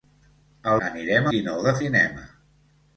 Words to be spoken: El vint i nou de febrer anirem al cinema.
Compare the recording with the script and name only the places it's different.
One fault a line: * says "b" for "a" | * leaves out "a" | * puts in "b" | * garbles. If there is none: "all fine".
* says "anirem" for "vint"
* leaves out "febrer anirem al"